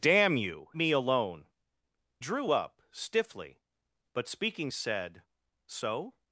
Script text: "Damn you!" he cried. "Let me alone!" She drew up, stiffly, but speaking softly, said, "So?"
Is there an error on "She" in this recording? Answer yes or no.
yes